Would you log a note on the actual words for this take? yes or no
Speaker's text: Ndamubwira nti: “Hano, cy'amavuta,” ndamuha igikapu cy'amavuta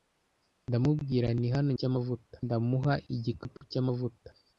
no